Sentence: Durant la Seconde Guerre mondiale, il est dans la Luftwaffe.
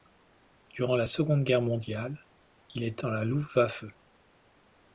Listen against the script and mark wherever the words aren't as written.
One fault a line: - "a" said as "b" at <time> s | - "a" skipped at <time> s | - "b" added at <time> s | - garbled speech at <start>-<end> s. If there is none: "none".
none